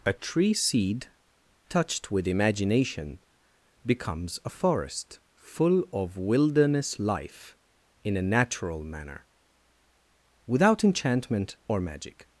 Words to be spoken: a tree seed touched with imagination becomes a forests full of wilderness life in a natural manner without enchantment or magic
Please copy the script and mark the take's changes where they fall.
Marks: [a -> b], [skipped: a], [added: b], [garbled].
a tree seed touched with imagination becomes a [forests -> forest] full of wilderness life in a natural manner without enchantment or magic